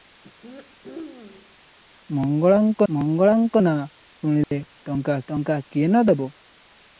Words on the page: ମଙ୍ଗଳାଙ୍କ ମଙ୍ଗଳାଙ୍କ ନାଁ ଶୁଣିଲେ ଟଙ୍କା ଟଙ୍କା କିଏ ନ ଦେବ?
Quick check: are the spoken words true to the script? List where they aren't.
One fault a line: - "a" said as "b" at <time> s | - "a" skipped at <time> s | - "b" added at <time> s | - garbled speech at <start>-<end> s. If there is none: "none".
none